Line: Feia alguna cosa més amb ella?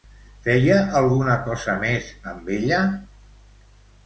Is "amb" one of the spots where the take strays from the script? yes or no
no